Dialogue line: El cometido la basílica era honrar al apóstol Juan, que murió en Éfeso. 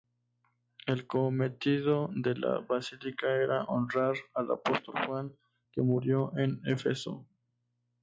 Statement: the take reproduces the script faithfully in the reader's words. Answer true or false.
false